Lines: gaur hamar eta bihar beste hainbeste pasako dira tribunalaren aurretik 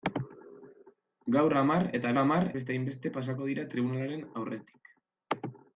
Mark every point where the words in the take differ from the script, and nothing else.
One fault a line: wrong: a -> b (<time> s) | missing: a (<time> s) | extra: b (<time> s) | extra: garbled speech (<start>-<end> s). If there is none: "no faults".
wrong: bihar -> hamar (2.2 s)